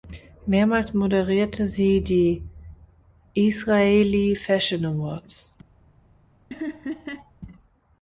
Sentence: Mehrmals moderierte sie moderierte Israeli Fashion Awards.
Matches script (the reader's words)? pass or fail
fail